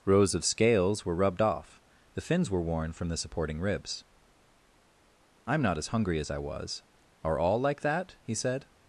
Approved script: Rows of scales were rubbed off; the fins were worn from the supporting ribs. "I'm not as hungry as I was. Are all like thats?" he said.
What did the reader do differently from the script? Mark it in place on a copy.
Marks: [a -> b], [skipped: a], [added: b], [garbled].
Rows of scales were rubbed off; the fins were worn from the supporting ribs. "I'm not as hungry as I was. Are all like [thats?" -> that] he said.